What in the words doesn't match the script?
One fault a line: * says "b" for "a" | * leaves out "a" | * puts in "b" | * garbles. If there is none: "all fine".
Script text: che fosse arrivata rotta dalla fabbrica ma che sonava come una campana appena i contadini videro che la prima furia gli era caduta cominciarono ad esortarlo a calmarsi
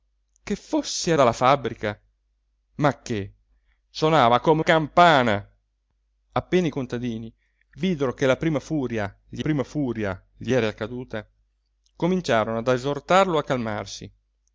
* leaves out "arrivata rotta"
* leaves out "una"
* puts in "prima furia gli"